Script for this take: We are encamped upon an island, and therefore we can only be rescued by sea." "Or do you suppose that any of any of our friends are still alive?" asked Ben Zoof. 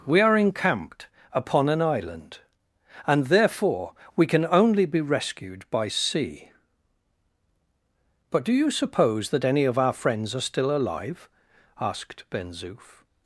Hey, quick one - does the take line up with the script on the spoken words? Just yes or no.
no